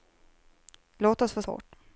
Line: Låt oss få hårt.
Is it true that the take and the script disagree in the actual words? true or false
false